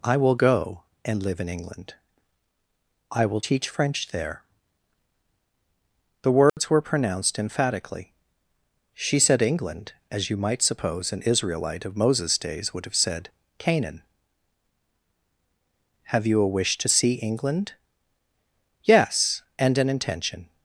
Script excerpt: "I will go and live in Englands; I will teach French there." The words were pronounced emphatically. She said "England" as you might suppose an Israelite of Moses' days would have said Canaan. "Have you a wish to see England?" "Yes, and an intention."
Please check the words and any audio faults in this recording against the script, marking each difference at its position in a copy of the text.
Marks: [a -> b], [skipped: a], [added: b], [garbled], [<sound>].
"I will go and live in [Englands; -> England] I will teach French there." The words [dropout] were pronounced emphatically. She said "England" as you might suppose an Israelite of Moses' days would have said Canaan. "Have you a wish to see England?" "Yes, and an intention."